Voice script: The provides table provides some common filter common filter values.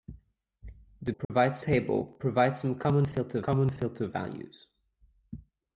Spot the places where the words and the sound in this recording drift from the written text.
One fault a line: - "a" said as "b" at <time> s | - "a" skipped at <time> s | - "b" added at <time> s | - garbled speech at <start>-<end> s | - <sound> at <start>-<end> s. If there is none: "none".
- dropout at 1.2-1.3 s